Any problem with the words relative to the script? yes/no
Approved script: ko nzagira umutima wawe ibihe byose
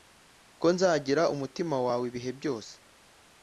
no